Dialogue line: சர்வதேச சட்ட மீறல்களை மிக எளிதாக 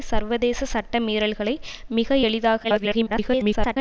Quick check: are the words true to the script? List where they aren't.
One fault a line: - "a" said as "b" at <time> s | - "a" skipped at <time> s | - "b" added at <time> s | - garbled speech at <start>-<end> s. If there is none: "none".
- garbled speech at 2.6-3.8 s